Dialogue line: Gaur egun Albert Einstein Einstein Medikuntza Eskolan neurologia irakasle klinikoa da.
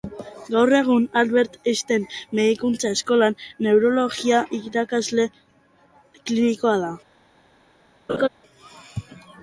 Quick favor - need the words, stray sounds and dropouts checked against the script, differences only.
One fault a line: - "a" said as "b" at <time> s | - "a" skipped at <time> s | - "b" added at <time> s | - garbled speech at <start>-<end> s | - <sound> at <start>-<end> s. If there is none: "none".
- "Einstein" skipped at 2.1 s
- laugh at 8.1-8.3 s